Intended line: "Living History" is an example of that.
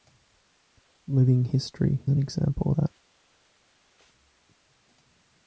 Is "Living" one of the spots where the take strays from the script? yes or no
no